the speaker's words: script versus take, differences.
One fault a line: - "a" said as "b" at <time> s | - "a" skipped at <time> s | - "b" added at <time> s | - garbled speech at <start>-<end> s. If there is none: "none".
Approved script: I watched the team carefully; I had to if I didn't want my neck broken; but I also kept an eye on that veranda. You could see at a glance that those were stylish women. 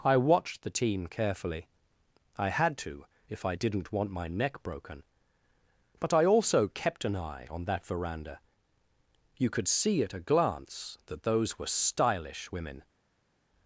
none